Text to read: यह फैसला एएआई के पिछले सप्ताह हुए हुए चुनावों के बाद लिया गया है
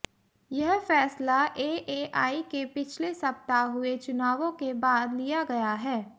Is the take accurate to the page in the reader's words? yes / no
no